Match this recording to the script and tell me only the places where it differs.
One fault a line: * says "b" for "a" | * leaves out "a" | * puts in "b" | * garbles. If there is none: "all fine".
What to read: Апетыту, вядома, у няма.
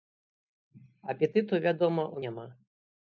all fine